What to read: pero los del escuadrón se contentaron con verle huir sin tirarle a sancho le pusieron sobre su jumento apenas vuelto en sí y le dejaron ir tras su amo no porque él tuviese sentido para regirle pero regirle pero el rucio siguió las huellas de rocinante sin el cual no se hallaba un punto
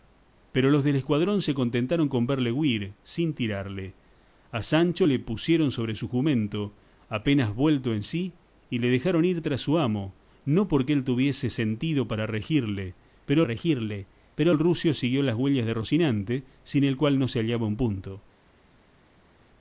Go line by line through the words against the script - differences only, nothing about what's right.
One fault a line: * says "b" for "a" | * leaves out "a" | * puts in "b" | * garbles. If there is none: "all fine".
all fine